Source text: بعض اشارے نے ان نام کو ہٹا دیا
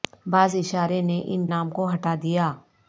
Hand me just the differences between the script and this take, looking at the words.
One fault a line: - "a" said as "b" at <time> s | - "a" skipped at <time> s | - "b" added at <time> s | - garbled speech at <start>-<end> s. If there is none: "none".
none